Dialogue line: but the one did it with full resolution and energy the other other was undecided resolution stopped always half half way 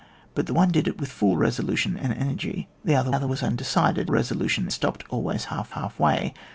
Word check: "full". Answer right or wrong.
right